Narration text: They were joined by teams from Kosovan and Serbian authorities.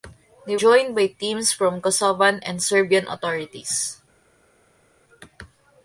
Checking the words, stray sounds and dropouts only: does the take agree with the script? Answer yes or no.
no